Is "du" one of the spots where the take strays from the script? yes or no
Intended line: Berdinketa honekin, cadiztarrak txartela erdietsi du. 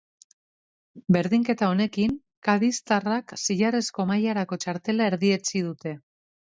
yes